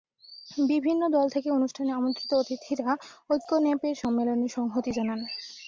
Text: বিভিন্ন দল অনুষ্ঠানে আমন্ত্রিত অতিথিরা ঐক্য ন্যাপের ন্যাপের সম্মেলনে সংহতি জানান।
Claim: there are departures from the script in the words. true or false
true